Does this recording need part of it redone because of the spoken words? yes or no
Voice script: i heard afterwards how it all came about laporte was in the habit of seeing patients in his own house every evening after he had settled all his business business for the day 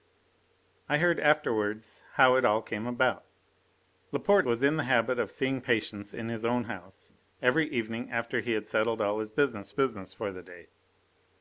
no